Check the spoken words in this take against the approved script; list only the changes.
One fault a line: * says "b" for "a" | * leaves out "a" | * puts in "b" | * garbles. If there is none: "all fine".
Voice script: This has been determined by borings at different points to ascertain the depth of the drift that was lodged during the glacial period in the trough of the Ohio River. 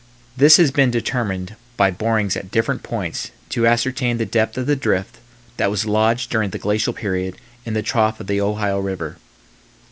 all fine